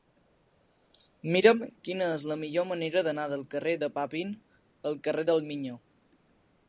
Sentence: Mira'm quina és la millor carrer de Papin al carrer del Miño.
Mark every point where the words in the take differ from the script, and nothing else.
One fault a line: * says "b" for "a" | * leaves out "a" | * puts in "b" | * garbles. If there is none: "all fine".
* puts in "manera d'anar del"